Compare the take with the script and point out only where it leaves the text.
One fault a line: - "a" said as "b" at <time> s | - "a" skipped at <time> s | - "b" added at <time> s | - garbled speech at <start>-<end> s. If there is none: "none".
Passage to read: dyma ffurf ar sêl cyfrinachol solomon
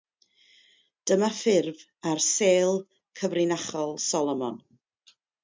none